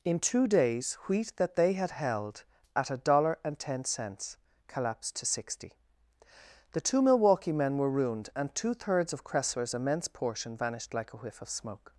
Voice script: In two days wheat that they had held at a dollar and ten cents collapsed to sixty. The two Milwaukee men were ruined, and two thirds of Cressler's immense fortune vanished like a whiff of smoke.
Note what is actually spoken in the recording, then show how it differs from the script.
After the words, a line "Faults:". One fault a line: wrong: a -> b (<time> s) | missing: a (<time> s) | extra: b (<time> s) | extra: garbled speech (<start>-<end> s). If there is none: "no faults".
In two days wheat that they had held at a dollar and ten cents collapsed to sixty. The two Milwaukee men were ruined, and two thirds of Cressler's immense portion vanished like a whiff of smoke.
Faults:
wrong: fortune -> portion (10.1 s)